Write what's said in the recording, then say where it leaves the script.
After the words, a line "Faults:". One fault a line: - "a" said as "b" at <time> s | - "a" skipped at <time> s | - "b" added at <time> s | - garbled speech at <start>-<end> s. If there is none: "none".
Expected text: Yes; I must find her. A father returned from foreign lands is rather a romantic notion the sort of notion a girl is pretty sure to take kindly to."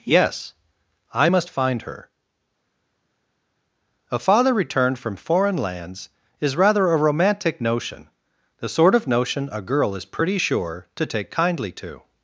Yes; I must find her. A father returned from foreign lands is rather a romantic notion the sort of notion a girl is pretty sure to take kindly to."
Faults:
none